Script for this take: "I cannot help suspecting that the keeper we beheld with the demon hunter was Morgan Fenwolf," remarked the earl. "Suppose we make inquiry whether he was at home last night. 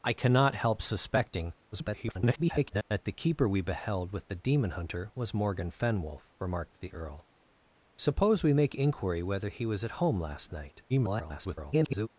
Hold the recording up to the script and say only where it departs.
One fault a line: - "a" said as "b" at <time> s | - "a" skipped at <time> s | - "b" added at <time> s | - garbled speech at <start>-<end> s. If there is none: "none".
- garbled speech at 1.7-2.8 s
- garbled speech at 10.9-12.1 s